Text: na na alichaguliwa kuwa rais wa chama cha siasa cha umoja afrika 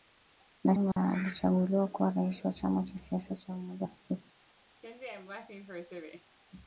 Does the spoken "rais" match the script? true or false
true